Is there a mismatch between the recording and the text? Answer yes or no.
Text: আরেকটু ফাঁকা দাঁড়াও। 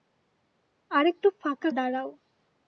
no